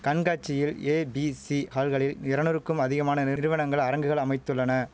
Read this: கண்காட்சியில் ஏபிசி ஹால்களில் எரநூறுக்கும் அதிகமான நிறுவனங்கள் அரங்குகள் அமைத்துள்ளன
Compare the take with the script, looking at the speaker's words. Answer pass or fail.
pass